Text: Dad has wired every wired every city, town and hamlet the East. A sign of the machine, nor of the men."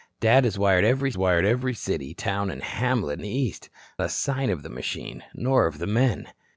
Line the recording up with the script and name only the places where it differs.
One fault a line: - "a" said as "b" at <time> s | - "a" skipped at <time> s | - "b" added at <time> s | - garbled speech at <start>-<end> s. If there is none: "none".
none